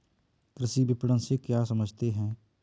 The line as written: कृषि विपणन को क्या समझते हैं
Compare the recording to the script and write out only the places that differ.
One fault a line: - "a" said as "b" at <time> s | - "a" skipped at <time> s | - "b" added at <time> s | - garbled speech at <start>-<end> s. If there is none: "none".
- "को" said as "से" at 1.2 s